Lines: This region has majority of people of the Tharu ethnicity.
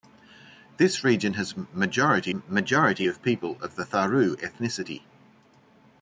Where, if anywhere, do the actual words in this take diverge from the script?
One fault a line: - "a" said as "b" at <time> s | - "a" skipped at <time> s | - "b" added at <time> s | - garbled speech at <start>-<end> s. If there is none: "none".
- "majority" added at 2.3 s